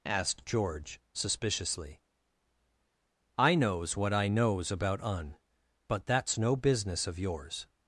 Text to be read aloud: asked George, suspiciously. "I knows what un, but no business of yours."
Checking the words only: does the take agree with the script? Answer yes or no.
no